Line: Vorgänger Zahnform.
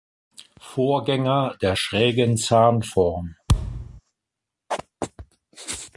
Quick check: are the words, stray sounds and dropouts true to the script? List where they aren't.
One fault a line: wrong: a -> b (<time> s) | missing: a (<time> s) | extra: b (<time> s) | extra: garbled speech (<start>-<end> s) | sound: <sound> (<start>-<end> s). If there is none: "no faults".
extra: der schrägen (1.6 s)
sound: thud (3.5-4.0 s)